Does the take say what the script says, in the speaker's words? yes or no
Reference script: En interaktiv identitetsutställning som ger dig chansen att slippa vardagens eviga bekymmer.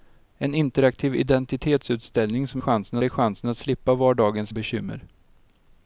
no